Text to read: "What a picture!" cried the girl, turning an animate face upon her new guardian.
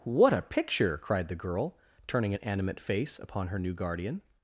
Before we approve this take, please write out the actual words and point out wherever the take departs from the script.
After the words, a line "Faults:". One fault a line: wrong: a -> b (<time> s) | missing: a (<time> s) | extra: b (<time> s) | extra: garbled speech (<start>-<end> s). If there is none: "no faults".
"What a picture!" cried the girl, turning an animate face upon her new guardian.
Faults:
no faults